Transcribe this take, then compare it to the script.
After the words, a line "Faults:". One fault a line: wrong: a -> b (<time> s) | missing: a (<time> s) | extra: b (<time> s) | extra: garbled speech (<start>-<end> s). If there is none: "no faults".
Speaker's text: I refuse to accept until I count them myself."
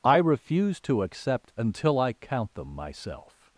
I refuse to accept until I count them myself."
Faults:
no faults